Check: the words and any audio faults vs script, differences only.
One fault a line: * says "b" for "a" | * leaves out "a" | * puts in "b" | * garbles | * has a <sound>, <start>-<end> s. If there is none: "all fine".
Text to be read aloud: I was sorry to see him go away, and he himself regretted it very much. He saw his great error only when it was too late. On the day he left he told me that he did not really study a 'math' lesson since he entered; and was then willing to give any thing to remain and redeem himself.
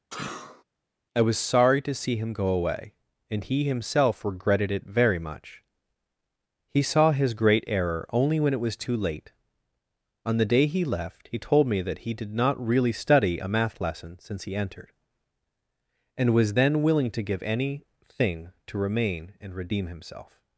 * has a sneeze, 0.1-0.6 s